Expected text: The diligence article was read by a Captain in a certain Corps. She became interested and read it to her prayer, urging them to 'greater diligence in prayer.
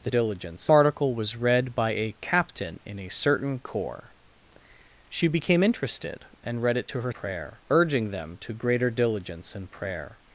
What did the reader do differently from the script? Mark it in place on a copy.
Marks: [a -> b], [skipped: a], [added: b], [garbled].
The diligence article was read by a Captain in a certain Corps. She became interested and read it to her prayer, urging them to 'greater diligence in prayer.